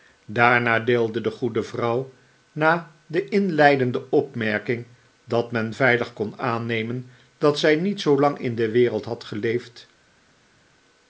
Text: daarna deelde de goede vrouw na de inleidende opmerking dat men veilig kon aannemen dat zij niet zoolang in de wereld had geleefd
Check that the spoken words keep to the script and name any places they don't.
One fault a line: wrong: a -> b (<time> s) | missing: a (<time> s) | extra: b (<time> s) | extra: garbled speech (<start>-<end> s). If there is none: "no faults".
no faults